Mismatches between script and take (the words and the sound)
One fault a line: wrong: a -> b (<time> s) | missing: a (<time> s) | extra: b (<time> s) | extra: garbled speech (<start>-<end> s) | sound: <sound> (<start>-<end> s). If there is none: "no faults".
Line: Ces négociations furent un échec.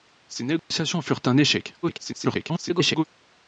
sound: dropout (0.6-0.7 s)
extra: garbled speech (1.8-3.0 s)